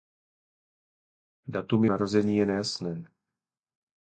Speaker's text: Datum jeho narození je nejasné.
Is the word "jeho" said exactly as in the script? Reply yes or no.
no